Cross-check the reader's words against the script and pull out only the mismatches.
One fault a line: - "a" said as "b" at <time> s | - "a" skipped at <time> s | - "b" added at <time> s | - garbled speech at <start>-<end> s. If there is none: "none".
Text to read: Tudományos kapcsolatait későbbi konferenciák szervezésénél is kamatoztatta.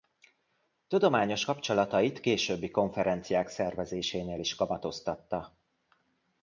none